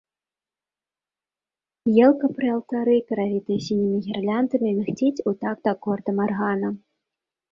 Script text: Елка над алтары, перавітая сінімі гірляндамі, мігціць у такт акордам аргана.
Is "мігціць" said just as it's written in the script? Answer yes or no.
yes